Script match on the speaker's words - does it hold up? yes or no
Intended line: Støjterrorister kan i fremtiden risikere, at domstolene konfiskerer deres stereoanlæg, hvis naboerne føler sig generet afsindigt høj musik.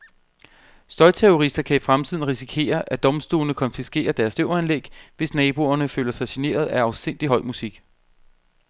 no